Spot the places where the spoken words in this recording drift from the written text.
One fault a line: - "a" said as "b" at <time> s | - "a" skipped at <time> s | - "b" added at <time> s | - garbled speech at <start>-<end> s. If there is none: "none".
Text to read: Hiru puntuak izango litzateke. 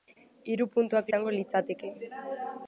none